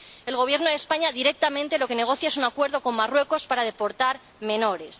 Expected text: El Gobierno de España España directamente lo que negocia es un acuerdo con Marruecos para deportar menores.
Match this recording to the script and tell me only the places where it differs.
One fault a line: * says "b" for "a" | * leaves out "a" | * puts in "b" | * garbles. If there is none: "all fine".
* leaves out "España"